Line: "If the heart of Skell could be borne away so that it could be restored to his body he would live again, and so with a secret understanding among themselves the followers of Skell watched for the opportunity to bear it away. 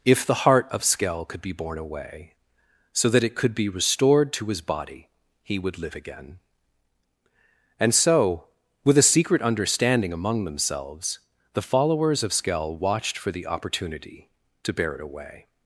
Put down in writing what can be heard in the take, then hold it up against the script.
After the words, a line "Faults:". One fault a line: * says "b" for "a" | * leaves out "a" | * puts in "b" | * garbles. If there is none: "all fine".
"If the heart of Skell could be borne away so that it could be restored to his body he would live again, and so with a secret understanding among themselves the followers of Skell watched for the opportunity to bear it away.
Faults:
all fine